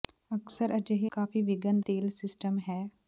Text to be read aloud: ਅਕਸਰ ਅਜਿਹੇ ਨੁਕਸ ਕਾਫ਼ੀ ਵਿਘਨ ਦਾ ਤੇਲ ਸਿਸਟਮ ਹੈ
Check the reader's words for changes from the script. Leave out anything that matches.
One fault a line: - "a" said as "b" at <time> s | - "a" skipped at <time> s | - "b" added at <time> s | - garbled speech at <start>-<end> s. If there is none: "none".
- "ਨੁਕਸ" skipped at 1.1 s
- "ਦਾ" skipped at 1.8 s